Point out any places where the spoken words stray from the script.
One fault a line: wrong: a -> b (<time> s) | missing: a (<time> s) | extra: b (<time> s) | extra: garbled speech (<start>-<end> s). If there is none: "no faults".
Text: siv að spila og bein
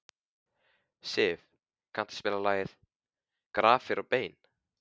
extra: kanntu (2.0 s)
extra: lagið grafir (2.5 s)